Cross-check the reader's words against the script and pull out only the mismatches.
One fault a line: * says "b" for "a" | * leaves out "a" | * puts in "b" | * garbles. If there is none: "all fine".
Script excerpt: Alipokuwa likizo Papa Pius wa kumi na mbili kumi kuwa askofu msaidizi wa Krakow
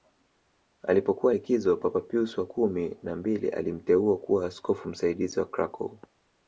* says "alimteua" for "kumi"